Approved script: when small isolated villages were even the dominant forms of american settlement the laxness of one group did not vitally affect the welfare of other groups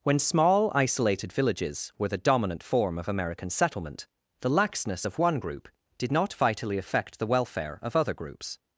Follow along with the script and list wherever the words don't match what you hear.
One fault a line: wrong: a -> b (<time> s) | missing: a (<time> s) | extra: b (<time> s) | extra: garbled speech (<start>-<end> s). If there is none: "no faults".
missing: even (2.1 s)
wrong: forms -> form (2.6 s)